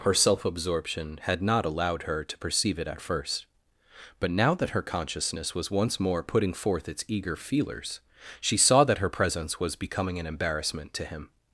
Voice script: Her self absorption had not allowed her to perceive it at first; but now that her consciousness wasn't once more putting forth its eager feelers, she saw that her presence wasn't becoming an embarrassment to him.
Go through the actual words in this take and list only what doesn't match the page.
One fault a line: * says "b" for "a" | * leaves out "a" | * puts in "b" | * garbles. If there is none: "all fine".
* says "was" for "wasn't"
* says "was" for "wasn't"